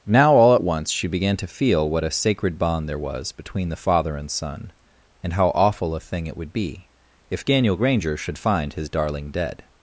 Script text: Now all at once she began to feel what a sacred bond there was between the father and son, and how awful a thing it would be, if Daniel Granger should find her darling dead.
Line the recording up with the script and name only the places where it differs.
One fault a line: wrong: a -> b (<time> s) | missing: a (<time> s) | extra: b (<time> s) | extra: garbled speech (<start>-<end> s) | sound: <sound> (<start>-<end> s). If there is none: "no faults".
wrong: her -> his (8.7 s)